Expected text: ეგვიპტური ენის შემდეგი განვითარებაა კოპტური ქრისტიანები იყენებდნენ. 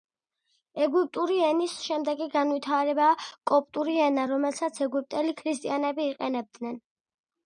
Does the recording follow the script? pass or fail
fail